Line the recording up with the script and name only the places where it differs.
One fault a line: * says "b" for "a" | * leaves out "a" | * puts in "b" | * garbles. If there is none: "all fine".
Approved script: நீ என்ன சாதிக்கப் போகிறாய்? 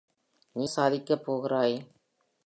* leaves out "என்ன"